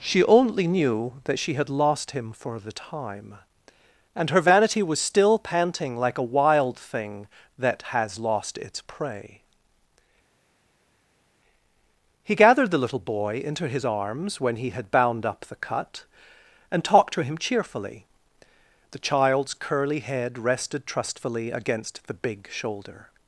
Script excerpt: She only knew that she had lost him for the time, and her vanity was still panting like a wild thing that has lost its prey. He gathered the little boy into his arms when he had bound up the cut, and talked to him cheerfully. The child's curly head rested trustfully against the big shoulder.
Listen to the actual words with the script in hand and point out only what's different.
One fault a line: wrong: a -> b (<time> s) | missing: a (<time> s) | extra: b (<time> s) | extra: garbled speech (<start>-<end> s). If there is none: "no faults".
no faults